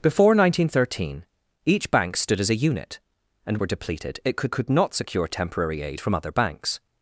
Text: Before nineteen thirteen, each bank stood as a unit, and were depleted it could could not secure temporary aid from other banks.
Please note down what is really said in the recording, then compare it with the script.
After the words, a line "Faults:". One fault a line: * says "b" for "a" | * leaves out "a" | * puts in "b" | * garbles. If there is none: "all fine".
Before nineteen thirteen, each bank stood as a unit, and were depleted it could could not secure temporary aid from other banks.
Faults:
all fine